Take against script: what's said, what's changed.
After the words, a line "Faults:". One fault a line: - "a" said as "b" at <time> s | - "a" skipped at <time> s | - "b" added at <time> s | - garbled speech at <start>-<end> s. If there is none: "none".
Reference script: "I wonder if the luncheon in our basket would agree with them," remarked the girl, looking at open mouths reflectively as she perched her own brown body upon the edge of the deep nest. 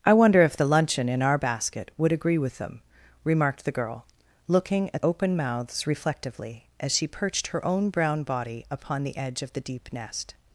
"I wonder if the luncheon in our basket would agree with them," remarked the girl, looking at open mouths reflectively as she perched her own brown body upon the edge of the deep nest.
Faults:
none